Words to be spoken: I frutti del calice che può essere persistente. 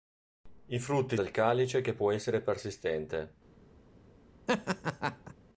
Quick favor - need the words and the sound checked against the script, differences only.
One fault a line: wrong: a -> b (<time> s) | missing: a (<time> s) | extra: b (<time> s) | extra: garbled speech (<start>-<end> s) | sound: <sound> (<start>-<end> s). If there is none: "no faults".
sound: laugh (4.5-5.3 s)